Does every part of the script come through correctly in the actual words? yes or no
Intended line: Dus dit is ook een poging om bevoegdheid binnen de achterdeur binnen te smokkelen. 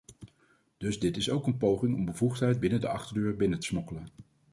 yes